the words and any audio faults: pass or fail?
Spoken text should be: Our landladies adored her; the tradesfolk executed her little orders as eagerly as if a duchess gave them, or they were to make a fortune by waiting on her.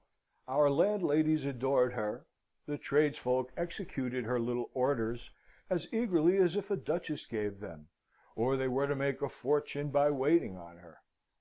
pass